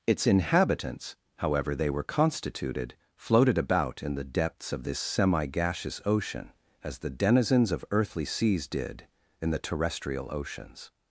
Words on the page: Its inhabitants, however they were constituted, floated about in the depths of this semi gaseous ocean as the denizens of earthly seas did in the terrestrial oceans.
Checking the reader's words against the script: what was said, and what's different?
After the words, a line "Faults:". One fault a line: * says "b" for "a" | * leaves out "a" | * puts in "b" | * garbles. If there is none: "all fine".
Its inhabitants, however they were constituted, floated about in the depths of this semi gaseous ocean as the denizens of earthly seas did in the terrestrial oceans.
Faults:
all fine